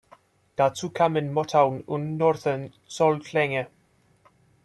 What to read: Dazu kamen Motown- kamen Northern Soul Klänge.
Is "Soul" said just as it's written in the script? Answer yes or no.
yes